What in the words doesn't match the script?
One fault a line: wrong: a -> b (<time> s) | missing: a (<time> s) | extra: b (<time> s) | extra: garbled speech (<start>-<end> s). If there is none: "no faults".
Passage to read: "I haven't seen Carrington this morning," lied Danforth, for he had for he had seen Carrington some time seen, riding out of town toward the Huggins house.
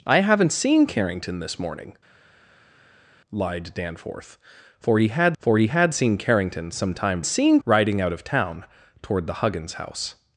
no faults